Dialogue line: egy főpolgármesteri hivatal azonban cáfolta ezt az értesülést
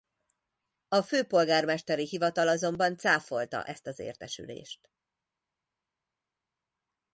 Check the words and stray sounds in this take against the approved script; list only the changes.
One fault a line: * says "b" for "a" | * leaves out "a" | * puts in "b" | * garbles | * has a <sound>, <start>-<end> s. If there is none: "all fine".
* says "a" for "egy"